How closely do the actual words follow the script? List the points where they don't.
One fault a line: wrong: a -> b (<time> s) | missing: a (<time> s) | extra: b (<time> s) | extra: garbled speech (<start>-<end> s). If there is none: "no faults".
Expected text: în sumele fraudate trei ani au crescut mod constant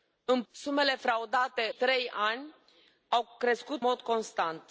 no faults